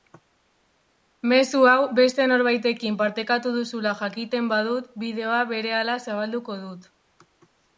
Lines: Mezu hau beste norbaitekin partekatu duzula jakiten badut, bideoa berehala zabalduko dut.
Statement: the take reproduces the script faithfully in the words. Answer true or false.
true